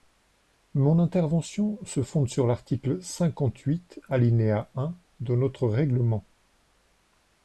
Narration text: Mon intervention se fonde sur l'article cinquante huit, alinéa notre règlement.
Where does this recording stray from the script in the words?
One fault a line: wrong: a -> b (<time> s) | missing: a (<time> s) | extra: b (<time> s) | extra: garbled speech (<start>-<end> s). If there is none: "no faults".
extra: un de (4.8 s)